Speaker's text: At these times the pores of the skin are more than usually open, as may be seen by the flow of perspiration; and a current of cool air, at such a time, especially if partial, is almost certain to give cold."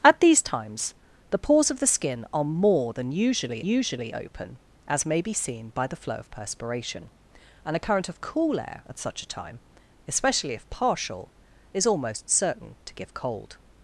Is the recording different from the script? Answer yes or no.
yes